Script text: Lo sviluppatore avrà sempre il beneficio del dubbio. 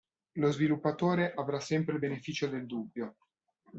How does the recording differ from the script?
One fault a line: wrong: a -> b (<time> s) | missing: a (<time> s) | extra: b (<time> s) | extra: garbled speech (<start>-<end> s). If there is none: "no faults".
no faults